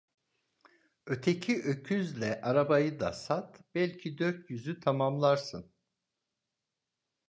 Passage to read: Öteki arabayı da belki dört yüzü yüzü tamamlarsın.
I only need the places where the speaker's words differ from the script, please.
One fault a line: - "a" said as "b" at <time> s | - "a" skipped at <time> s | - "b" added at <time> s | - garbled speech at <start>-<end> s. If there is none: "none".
- "öküzle" added at 1.6 s
- "sat" added at 3.1 s
- "yüzü" skipped at 4.8 s